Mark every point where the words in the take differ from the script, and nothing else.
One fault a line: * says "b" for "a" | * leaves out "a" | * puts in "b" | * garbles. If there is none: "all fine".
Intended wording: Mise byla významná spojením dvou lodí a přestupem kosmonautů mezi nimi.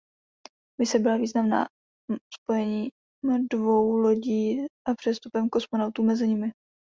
all fine